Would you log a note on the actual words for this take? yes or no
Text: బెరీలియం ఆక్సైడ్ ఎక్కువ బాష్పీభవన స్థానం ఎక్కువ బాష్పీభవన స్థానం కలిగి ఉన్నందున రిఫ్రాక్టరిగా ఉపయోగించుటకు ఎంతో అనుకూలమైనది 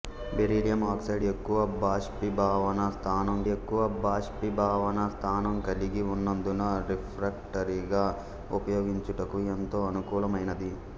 no